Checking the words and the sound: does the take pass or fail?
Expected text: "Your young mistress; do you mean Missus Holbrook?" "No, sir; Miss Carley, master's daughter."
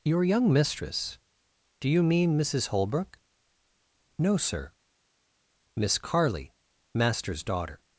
pass